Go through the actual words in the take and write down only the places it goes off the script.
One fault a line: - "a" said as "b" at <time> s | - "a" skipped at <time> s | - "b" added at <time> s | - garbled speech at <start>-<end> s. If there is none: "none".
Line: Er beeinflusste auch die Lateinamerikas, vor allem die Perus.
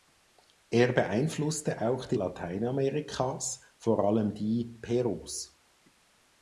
none